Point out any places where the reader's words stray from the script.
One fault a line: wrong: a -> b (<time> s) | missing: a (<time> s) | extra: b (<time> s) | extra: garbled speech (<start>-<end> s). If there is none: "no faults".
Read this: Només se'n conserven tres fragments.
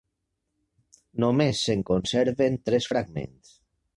no faults